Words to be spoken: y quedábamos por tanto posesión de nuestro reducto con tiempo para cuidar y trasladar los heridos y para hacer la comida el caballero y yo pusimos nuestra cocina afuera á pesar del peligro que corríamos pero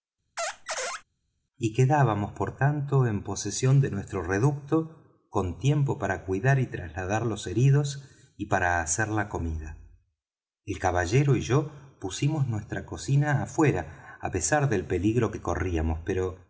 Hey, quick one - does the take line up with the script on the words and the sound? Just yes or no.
no